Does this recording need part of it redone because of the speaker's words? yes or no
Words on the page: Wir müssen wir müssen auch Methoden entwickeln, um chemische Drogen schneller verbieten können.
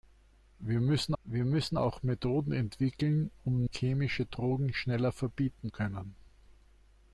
no